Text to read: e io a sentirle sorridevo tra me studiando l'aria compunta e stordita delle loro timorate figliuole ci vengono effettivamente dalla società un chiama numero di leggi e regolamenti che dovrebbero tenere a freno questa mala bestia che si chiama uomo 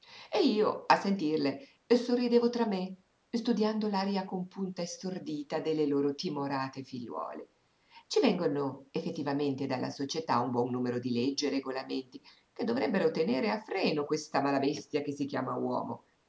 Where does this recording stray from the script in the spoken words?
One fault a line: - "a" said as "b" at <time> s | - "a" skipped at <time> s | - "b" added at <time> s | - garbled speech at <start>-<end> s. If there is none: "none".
- "chiama" said as "buon" at 10.5 s